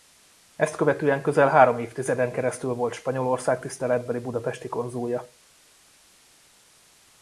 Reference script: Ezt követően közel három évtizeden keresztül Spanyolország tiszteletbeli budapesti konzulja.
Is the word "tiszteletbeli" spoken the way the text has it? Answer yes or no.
yes